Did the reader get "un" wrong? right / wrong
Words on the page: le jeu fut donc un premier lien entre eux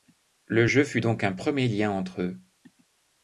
right